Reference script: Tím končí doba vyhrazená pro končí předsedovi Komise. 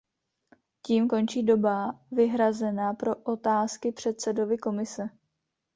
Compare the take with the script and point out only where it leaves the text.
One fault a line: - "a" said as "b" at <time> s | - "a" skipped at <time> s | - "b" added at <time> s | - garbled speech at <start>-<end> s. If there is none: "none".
- "končí" said as "otázky" at 3.1 s